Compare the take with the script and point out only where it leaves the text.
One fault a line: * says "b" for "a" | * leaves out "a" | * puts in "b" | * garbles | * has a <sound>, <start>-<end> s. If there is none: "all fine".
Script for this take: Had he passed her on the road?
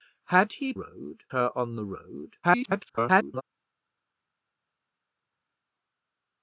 * says "road" for "passed"
* garbles